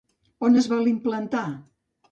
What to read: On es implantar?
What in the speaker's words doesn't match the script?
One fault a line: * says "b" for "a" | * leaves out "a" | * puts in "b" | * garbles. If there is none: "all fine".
* puts in "vol"